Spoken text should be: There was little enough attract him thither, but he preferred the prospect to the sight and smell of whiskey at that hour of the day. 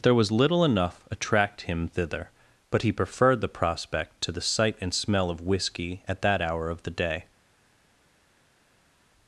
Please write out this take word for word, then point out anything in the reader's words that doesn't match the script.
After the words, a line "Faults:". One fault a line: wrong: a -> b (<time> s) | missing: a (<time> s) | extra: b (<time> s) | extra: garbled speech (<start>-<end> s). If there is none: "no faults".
There was little enough attract him thither, but he preferred the prospect to the sight and smell of whiskey at that hour of the day.
Faults:
no faults